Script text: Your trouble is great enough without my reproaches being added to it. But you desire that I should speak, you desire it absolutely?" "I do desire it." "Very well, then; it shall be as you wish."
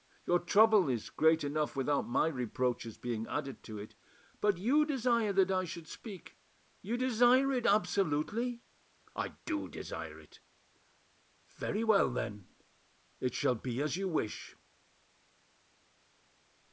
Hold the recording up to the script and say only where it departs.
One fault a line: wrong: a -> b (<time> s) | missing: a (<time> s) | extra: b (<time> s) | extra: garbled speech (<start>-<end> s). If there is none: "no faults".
no faults